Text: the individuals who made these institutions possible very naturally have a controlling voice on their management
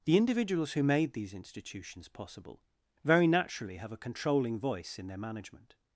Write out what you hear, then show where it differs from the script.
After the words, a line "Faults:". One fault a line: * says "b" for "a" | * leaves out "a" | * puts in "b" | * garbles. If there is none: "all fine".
the individuals who made these institutions possible very naturally have a controlling voice in their management
Faults:
* says "in" for "on"